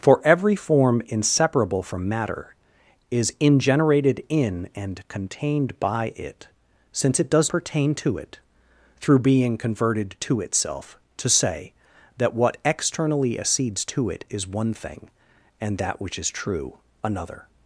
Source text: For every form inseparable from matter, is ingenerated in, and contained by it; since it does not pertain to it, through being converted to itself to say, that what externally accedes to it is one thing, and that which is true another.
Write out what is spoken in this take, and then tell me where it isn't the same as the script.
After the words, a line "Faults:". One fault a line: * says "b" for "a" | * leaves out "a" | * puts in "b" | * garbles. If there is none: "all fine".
For every form inseparable from matter, is ingenerated in, and contained by it; since it does pertain to it, through being converted to itself to say, that what externally accedes to it is one thing, and that which is true another.
Faults:
* leaves out "not"